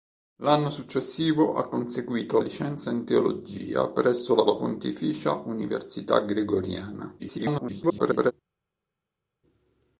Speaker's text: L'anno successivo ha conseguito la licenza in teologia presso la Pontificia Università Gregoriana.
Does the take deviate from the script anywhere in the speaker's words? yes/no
yes